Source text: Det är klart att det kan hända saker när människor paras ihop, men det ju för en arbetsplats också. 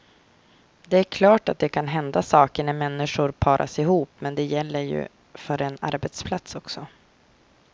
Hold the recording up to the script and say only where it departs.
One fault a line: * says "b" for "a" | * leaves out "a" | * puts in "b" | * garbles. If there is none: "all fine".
* puts in "gäller"